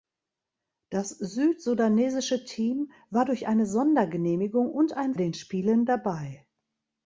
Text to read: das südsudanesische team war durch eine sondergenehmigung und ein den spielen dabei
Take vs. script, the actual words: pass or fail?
pass